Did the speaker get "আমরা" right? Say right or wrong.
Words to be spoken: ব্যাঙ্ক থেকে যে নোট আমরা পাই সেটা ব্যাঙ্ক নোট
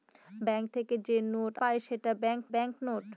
wrong